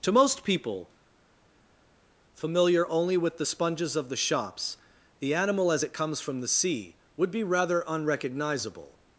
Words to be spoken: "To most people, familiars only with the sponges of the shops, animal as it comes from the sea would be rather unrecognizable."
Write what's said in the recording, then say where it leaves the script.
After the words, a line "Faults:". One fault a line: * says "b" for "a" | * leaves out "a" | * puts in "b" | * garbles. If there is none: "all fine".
"To most people, familiar only with the sponges of the shops, the animal as it comes from the sea would be rather unrecognizable."
Faults:
* says "familiar" for "familiars"
* puts in "the"